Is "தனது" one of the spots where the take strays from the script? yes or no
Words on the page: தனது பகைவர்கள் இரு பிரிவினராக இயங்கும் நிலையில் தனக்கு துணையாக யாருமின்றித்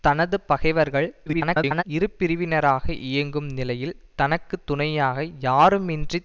no